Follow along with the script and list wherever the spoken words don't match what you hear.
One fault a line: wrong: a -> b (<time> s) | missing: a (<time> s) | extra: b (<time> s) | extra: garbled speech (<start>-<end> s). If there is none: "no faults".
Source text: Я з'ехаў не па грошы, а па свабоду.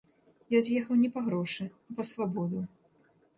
no faults